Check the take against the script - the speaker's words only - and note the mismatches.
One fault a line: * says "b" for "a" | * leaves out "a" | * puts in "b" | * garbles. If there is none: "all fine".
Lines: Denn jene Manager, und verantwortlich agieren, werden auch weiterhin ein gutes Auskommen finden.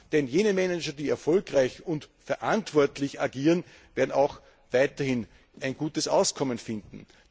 * puts in "die erfolgreich"